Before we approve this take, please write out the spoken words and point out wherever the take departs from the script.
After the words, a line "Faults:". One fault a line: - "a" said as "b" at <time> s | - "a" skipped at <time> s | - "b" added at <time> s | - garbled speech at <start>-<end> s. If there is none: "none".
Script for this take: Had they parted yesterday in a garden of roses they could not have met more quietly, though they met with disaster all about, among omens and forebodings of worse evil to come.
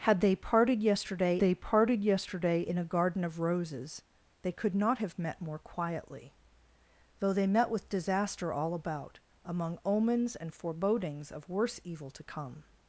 Had they parted yesterday they parted yesterday in a garden of roses they could not have met more quietly, though they met with disaster all about, among omens and forebodings of worse evil to come.
Faults:
- "they parted yesterday" added at 1.4 s